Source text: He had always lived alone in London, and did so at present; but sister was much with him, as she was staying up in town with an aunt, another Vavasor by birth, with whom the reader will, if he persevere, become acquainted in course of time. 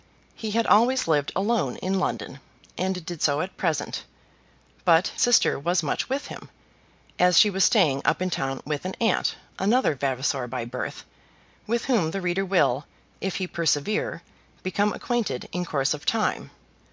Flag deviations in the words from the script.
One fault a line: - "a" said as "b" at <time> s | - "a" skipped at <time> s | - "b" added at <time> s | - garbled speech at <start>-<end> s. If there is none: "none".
none